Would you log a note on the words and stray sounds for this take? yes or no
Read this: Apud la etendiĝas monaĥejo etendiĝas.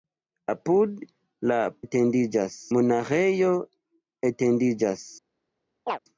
yes